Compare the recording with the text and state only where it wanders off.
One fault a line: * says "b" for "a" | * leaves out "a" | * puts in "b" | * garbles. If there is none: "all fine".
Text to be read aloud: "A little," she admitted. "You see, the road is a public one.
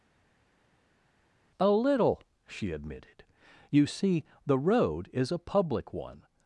all fine